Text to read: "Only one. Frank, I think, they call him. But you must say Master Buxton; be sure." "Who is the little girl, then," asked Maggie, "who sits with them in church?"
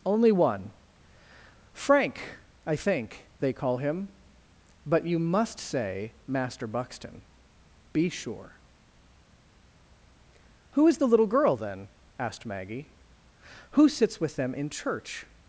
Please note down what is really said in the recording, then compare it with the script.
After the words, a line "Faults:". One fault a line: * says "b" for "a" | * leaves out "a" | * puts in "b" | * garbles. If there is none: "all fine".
"Only one. Frank, I think, they call him. But you must say Master Buxton; be sure." "Who is the little girl, then," asked Maggie, "who sits with them in church?"
Faults:
all fine